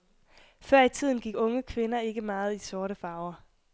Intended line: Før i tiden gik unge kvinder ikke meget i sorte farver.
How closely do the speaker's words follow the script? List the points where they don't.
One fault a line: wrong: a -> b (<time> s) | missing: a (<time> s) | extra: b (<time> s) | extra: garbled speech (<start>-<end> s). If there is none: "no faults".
no faults